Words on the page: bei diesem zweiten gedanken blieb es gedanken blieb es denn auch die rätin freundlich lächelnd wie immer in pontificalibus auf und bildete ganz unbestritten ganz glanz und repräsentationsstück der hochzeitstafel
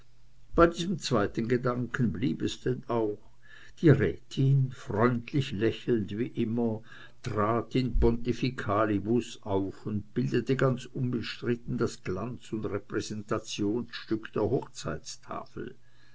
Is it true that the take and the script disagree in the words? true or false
true